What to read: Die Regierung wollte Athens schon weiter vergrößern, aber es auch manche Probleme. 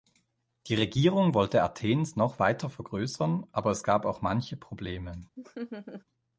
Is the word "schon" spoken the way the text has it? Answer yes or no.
no